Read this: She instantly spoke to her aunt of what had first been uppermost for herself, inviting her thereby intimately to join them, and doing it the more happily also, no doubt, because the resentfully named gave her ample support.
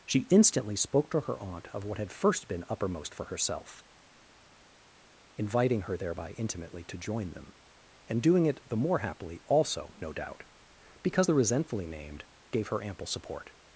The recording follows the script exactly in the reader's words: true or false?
true